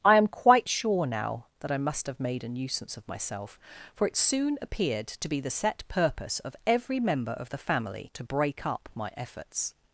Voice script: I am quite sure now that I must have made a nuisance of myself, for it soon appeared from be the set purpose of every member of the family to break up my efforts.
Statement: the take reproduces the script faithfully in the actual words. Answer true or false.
false